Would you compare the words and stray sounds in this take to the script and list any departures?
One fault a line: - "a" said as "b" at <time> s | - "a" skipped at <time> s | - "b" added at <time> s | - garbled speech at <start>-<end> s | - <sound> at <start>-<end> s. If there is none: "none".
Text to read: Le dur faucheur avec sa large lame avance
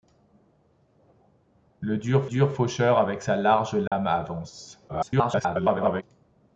- "dur" added at 2.2 s
- dropout at 3.9-3.9 s
- garbled speech at 4.9-6.0 s